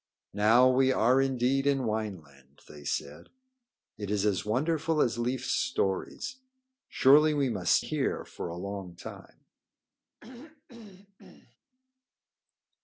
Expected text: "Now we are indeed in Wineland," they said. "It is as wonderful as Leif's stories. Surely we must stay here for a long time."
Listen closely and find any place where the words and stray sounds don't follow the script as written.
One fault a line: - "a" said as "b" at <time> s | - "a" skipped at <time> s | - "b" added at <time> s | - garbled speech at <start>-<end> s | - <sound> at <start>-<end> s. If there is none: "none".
- "stay" skipped at 7.8 s
- throat clearing at 10.2-11.6 s